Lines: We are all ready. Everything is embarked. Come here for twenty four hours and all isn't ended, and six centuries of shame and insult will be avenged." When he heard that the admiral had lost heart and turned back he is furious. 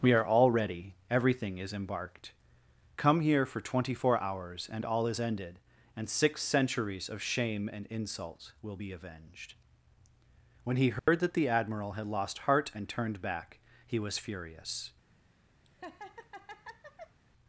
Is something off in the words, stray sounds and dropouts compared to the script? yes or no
yes